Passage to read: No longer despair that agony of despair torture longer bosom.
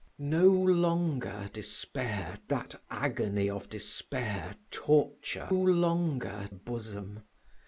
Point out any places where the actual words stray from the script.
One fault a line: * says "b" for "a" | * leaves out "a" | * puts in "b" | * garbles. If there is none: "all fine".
all fine